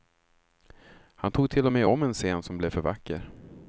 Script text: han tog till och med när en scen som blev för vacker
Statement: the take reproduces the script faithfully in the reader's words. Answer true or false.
false